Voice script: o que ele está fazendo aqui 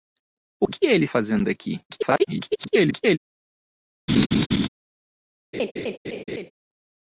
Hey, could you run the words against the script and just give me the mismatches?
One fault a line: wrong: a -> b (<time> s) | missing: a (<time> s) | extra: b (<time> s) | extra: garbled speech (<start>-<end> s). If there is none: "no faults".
missing: está (1.1 s)
extra: garbled speech (1.9-3.2 s)